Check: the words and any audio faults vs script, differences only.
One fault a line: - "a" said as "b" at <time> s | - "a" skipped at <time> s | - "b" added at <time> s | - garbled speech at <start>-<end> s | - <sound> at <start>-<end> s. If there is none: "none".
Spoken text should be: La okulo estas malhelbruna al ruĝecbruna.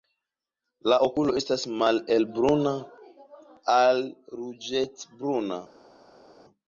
none